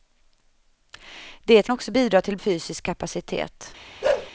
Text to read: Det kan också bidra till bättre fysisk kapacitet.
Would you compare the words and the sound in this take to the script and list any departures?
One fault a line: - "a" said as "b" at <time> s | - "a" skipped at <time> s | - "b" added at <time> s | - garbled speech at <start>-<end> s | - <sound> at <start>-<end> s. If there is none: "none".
- "kan" skipped at 1.7 s
- "bättre" skipped at 2.4 s
- bark at 4.0-4.3 s